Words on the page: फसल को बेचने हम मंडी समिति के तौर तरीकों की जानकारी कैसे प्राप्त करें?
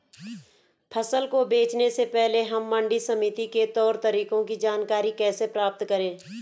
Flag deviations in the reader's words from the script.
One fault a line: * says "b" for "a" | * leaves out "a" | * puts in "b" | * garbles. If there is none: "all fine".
* puts in "से पहले"